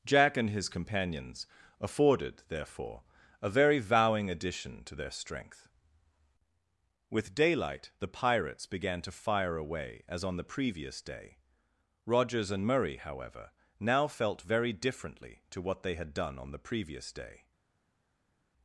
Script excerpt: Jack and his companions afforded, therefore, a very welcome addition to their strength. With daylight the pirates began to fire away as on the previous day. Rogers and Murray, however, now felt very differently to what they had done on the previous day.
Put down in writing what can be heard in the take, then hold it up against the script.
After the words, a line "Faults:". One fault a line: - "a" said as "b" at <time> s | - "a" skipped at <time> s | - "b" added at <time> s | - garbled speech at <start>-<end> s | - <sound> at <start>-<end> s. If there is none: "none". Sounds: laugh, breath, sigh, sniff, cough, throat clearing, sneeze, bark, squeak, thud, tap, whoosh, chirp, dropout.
Jack and his companions afforded, therefore, a very vowing addition to their strength. With daylight the pirates began to fire away as on the previous day. Rogers and Murray, however, now felt very differently to what they had done on the previous day.
Faults:
- "welcome" said as "vowing" at 3.8 s